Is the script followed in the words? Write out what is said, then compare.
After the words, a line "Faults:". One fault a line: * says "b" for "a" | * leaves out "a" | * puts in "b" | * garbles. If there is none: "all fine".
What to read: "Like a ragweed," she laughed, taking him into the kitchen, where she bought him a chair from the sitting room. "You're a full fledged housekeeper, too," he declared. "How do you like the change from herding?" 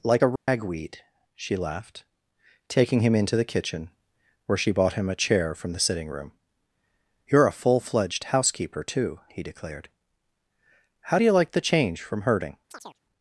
"Like a ragweed," she laughed, taking him into the kitchen, where she bought him a chair from the sitting room. "You're a full fledged housekeeper, too," he declared. "How do you like the change from herding?"
Faults:
all fine